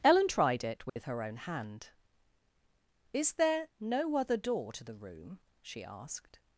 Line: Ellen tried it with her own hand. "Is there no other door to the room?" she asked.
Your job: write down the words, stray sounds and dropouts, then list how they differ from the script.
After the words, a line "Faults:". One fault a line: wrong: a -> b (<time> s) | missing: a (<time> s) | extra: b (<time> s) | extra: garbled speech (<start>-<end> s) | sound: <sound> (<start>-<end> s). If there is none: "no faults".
Ellen tried it with her own hand. "Is there no other door to the room?" she asked.
Faults:
sound: dropout (0.9-1.0 s)